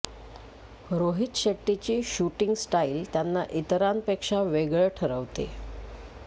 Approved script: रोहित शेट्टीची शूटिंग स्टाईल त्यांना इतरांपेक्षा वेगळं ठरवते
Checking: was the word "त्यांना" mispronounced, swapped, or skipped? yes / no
no